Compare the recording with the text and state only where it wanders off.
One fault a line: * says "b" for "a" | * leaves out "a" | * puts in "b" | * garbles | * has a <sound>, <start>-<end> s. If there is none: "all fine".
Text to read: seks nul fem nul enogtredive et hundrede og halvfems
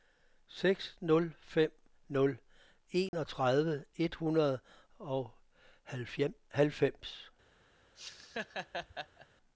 * has a dropout, 3.1-3.1 s
* has a laugh, 8.0-9.3 s